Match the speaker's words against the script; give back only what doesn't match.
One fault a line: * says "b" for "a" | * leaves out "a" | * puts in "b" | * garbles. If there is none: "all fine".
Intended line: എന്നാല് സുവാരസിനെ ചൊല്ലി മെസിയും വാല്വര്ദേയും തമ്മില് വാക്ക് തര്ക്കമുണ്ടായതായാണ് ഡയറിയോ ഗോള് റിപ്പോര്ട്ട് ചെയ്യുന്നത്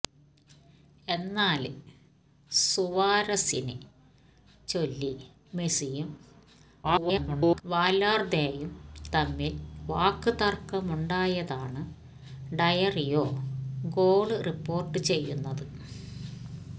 * garbles